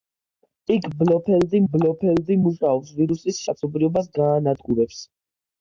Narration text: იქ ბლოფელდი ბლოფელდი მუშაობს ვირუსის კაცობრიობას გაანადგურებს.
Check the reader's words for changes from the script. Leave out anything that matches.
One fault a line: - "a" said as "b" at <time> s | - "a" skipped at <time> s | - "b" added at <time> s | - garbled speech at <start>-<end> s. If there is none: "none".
none